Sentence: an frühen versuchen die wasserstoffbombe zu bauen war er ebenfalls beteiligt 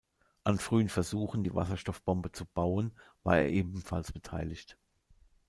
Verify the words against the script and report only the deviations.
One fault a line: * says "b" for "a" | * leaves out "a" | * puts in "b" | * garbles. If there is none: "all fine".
all fine